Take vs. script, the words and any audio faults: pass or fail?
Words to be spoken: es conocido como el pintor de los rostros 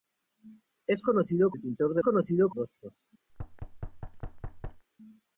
fail